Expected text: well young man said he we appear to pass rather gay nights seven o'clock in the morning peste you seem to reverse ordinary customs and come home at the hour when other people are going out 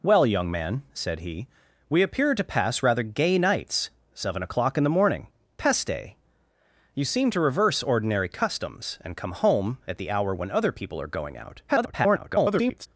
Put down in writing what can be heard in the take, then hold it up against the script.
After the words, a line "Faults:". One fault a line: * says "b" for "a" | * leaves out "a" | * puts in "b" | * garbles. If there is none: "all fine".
well young man said he we appear to pass rather gay nights seven o'clock in the morning peste you seem to reverse ordinary customs and come home at the hour when other people are going out [garbled]
Faults:
* garbles